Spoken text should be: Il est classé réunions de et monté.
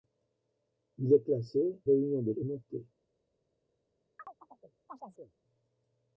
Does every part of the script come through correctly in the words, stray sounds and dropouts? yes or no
no